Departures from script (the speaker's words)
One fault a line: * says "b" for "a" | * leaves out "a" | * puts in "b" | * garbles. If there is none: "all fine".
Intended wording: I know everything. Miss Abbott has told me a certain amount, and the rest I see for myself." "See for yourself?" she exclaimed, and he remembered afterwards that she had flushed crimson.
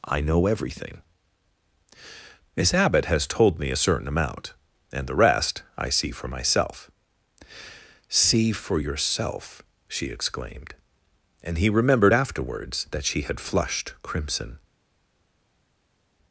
all fine